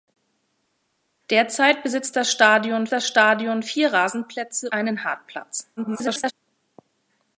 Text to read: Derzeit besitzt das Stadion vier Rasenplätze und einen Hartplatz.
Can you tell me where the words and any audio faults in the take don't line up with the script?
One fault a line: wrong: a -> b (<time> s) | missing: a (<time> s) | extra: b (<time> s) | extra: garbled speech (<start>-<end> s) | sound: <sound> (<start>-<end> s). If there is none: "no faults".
extra: das Stadion (2.9 s)
missing: und (4.7 s)
extra: garbled speech (5.8-6.3 s)